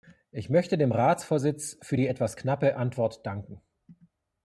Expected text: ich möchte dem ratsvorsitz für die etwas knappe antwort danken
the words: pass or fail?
pass